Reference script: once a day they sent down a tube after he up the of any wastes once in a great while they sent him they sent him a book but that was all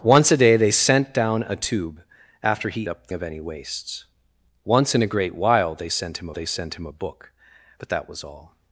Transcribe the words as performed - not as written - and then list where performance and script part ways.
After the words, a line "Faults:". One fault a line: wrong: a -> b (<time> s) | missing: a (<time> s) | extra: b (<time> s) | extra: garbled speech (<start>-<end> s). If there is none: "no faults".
once a day they sent down a tube after he up the of any wastes once in a great while they sent him they sent him a book but that was all
Faults:
no faults